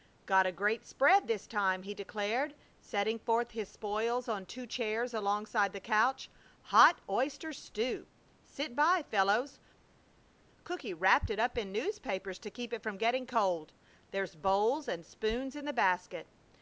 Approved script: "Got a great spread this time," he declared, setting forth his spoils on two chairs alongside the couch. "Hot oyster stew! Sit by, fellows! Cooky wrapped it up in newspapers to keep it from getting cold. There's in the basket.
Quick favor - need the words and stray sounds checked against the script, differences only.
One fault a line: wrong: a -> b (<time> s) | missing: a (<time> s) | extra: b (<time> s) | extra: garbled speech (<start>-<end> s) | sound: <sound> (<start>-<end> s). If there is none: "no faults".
extra: bowls and spoons (14.3 s)